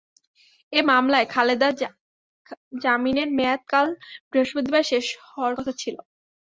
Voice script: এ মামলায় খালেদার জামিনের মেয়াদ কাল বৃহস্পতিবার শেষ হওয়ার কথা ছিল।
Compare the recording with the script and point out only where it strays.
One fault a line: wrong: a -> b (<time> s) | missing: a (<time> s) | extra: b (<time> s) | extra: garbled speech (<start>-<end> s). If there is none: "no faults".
no faults